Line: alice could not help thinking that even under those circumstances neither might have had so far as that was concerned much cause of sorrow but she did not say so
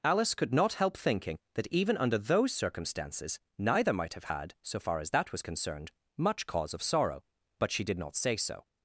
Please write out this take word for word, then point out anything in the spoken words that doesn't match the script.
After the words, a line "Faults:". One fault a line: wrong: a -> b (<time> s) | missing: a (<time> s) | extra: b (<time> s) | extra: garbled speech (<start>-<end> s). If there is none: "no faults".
alice could not help thinking that even under those circumstances neither might have had so far as that was concerned much cause of sorrow but she did not say so
Faults:
no faults